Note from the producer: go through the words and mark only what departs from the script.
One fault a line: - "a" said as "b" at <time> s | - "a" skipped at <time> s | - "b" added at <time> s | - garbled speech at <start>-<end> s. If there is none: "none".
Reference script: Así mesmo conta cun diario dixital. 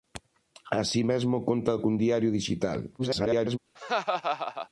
- garbled speech at 3.0-3.6 s